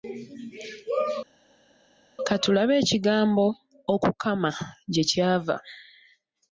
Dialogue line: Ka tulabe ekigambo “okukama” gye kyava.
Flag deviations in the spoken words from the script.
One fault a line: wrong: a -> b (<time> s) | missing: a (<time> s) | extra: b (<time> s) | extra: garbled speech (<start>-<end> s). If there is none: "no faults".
no faults